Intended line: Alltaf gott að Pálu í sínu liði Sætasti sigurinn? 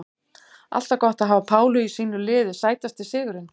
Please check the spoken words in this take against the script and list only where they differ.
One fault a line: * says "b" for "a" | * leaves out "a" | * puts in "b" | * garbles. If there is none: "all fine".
* puts in "hafa"